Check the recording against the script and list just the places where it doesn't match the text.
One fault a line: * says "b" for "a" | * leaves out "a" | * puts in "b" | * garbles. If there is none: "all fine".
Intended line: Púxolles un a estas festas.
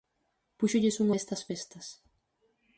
all fine